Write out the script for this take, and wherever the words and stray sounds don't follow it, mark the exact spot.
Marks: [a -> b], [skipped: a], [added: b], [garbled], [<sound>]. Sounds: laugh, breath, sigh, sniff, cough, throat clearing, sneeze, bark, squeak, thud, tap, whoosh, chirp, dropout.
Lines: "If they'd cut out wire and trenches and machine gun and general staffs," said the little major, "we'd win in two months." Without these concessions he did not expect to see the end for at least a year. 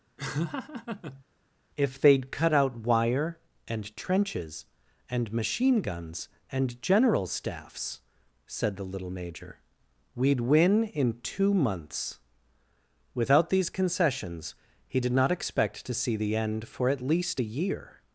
[laugh] "If they'd cut out wire and trenches and machine [gun -> guns] and general staffs," said the little major, "we'd win in two months." Without these concessions he did not expect to see the end for at least a year.